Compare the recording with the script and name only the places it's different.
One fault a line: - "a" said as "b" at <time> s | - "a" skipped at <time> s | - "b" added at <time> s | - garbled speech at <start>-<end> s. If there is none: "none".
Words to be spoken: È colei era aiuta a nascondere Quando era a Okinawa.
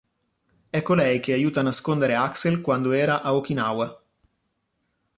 - "era" said as "che" at 1.2 s
- "Axel" added at 2.1 s